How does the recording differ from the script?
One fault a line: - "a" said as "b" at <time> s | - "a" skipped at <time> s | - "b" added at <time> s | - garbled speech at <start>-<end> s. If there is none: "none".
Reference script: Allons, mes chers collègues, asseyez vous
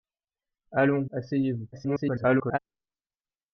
- "mes chers collègues" skipped at 1.1 s
- garbled speech at 1.7-2.6 s